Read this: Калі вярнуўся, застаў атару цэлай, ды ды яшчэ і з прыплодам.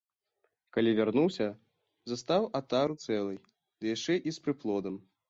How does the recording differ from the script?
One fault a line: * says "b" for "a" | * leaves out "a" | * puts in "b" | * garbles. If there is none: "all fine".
* leaves out "ды"